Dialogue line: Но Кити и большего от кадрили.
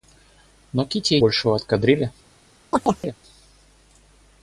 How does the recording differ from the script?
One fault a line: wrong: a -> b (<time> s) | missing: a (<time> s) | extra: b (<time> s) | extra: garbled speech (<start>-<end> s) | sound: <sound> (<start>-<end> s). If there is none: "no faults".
sound: chirp (2.7-3.2 s)